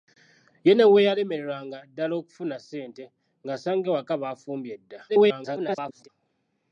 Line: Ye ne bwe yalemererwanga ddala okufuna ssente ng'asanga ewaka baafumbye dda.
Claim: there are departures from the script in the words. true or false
true